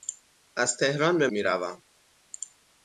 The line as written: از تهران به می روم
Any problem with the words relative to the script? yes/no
no